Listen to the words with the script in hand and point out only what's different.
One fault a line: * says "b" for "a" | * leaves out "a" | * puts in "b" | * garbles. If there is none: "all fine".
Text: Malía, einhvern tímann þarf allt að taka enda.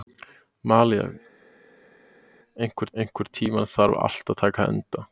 * puts in "einhvern"